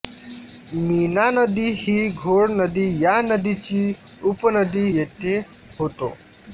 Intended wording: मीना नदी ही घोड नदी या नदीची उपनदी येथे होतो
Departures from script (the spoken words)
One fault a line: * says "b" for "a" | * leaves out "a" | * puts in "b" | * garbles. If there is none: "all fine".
all fine